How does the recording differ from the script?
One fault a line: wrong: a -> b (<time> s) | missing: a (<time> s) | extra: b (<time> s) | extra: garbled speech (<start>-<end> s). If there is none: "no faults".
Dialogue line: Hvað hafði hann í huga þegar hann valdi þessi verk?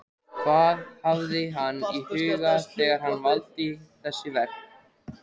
no faults